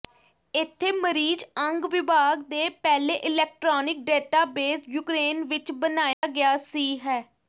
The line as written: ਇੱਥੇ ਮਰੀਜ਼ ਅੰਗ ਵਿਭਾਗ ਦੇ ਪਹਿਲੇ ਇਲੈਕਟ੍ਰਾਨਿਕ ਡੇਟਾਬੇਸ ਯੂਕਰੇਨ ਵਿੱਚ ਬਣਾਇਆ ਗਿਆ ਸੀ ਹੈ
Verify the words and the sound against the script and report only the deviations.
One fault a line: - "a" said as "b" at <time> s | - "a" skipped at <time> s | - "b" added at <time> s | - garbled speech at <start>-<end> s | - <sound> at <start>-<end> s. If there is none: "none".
- dropout at 6.1-6.2 s